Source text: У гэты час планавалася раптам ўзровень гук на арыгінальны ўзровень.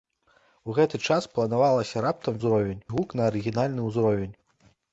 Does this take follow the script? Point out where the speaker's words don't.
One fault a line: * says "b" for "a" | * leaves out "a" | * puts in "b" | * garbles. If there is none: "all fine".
all fine